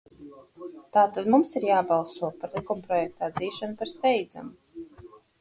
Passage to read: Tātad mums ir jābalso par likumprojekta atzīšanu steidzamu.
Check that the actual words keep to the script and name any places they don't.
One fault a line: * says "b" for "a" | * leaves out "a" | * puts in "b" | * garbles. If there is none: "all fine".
* puts in "par"